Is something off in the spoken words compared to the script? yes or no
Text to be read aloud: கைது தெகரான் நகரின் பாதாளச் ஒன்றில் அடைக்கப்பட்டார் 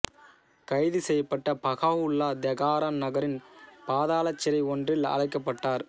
yes